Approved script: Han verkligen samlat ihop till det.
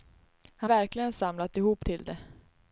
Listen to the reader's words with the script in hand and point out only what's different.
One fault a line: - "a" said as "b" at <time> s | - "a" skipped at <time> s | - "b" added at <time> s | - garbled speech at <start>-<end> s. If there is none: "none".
none